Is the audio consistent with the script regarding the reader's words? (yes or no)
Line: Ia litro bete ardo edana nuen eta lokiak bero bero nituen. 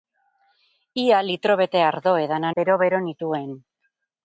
no